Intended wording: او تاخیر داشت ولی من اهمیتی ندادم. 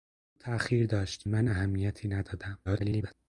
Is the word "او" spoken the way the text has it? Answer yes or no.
yes